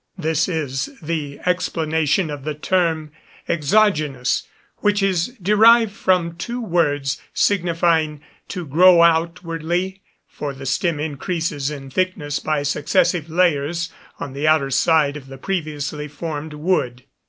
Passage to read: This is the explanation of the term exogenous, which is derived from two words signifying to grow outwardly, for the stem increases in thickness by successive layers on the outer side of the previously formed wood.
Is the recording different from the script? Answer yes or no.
no